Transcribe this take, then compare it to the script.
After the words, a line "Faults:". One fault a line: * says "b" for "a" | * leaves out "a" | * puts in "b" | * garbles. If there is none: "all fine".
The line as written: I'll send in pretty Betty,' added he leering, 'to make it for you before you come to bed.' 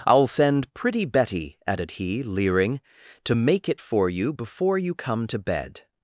I'll send pretty Betty,' added he leering, 'to make it for you before you come to bed.'
Faults:
* leaves out "in"